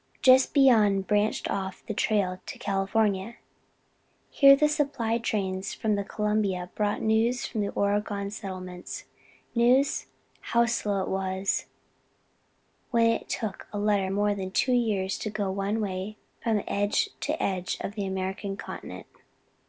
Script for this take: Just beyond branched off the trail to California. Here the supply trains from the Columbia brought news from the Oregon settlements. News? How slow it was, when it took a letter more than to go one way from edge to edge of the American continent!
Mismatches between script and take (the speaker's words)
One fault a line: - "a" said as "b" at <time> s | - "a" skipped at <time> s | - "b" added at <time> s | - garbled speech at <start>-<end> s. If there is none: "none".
- "two years" added at 14.5 s